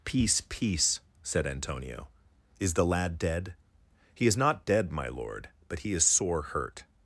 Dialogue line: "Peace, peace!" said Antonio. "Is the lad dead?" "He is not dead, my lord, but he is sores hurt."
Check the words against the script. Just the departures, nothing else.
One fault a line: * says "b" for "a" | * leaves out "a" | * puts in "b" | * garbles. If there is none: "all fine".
* says "sore" for "sores"